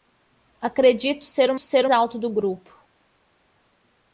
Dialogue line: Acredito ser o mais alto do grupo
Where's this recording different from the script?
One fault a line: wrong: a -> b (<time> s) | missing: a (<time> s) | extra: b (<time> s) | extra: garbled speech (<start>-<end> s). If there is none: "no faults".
wrong: mais -> ser (1.6 s)